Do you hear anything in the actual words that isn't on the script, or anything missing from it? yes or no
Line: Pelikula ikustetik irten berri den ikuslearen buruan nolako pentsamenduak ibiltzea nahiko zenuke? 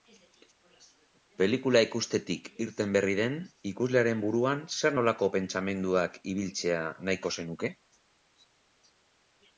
yes